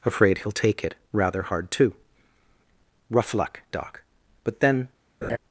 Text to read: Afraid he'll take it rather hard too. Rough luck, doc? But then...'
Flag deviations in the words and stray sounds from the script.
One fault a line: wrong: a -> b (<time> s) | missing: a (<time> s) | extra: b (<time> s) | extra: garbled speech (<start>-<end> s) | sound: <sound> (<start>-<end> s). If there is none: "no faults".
sound: laugh (5.2-5.4 s)